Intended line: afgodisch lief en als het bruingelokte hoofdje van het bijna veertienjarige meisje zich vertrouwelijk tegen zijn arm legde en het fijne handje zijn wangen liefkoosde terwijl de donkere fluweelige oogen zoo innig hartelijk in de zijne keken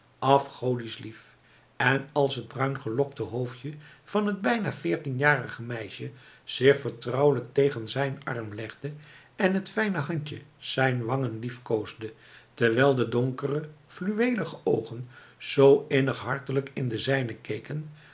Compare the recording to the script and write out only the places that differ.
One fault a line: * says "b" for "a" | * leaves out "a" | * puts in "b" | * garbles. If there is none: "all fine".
all fine